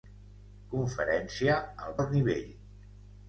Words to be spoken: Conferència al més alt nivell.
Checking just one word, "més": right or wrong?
wrong